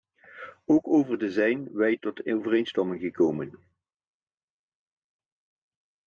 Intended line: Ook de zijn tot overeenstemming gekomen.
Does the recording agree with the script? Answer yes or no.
no